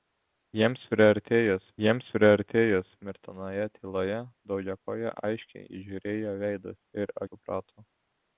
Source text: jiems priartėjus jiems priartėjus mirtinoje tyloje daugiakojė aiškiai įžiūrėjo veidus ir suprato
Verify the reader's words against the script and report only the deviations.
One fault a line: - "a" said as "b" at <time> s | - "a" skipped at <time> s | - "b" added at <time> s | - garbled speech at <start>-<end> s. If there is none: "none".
none